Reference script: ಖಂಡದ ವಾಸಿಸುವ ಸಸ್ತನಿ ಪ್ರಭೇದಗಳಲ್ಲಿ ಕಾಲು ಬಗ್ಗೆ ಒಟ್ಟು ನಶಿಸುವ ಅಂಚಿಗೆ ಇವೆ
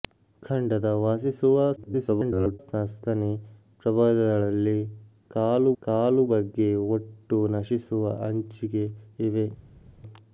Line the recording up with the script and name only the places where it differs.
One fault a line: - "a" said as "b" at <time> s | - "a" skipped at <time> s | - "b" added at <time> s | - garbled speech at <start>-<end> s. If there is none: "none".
- garbled speech at 1.8-2.6 s
- "ಕಾಲು" added at 5.8 s